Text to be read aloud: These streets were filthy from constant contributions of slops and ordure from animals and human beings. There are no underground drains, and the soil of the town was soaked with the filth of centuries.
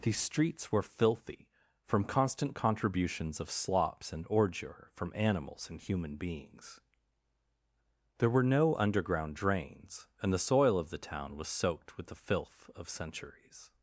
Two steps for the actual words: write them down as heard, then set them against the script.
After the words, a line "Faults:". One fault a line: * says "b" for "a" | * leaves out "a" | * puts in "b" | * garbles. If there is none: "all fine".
These streets were filthy from constant contributions of slops and ordure from animals and human beings. There were no underground drains, and the soil of the town was soaked with the filth of centuries.
Faults:
* says "were" for "are"